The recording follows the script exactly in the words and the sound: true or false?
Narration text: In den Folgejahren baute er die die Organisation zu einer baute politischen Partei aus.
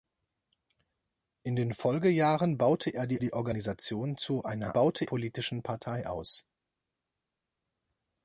true